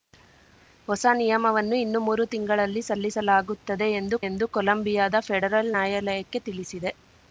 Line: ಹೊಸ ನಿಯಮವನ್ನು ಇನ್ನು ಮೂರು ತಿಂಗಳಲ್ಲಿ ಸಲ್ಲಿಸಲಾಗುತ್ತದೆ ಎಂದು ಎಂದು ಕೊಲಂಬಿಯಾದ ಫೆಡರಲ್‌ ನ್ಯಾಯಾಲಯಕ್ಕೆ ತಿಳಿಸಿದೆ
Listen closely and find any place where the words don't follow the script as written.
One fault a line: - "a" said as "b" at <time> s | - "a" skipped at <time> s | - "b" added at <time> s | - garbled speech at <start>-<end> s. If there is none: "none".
none